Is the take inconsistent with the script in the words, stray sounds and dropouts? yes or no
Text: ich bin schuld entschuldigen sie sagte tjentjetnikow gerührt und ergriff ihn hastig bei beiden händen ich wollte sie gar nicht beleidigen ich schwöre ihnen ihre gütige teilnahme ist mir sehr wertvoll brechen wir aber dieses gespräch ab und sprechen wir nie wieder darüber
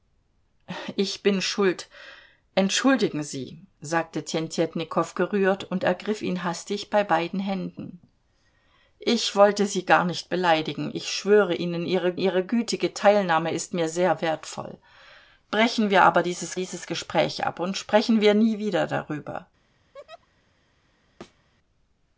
yes